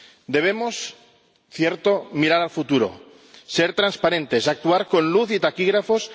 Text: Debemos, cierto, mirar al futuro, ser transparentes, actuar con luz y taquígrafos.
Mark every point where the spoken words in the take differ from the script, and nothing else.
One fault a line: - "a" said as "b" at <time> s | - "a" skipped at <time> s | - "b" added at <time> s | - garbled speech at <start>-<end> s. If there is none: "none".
none